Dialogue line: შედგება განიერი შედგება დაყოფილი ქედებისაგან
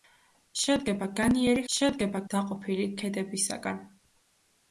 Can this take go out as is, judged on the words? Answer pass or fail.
pass